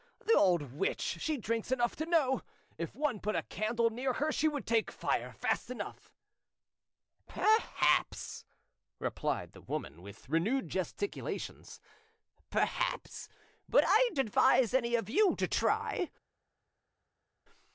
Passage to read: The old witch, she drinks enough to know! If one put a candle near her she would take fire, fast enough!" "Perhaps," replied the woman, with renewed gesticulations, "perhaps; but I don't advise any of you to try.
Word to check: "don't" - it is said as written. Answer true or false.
false